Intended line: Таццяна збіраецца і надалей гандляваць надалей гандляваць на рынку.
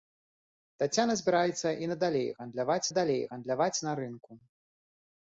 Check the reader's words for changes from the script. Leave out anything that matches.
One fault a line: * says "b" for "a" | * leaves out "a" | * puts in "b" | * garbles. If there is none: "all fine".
all fine